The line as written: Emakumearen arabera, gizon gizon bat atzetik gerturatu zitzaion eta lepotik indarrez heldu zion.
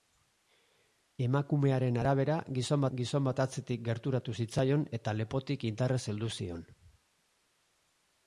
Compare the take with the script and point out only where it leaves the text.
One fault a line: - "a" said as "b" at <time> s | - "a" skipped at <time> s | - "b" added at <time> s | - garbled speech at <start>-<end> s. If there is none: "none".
none